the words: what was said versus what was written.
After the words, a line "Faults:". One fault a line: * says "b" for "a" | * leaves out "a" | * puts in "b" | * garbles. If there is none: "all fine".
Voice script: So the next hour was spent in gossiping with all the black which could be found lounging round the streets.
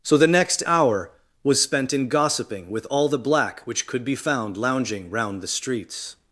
So the next hour was spent in gossiping with all the black which could be found lounging round the streets.
Faults:
all fine